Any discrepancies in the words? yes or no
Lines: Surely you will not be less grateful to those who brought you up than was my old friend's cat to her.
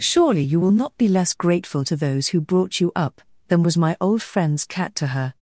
no